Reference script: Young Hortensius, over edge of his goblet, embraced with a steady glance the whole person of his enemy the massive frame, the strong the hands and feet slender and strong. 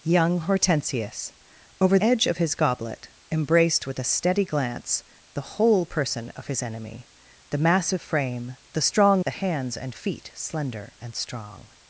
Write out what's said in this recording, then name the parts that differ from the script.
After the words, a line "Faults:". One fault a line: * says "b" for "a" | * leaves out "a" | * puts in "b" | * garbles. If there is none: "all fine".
Young Hortensius, over edge of his goblet, embraced with a steady glance the whole person of his enemy the massive frame, the strong the hands and feet slender and strong.
Faults:
all fine